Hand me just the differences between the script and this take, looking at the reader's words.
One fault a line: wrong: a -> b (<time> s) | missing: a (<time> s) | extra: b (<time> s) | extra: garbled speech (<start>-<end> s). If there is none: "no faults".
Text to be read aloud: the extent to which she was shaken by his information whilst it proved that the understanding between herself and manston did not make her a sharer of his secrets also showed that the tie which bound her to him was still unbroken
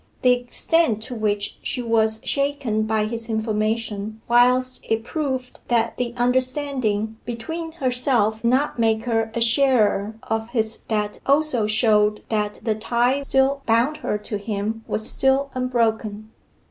missing: and manston did (8.4 s)
wrong: secrets -> that (10.9 s)
wrong: which -> still (13.2 s)